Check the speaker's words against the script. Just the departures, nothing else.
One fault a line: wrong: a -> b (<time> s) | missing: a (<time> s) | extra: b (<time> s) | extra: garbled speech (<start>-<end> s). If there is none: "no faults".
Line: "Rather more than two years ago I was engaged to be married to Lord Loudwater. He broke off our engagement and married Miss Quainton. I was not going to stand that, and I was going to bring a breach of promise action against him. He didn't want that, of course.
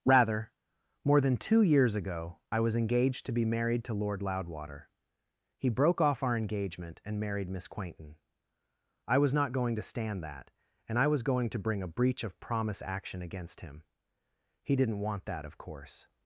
no faults